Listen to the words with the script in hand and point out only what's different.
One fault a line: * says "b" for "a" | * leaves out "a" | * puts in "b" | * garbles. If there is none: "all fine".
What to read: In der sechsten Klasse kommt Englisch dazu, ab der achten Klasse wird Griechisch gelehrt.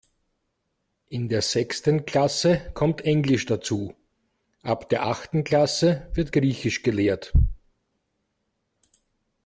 all fine